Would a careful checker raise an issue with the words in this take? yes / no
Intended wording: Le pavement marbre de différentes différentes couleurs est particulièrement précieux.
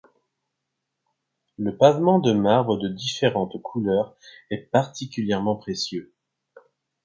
yes